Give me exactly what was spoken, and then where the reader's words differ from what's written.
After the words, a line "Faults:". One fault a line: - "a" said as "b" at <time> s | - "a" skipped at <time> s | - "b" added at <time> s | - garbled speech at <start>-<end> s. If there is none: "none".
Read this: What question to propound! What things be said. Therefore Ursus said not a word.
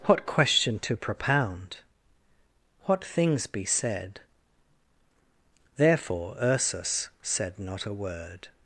What question to propound! What things be said. Therefore Ursus said not a word.
Faults:
none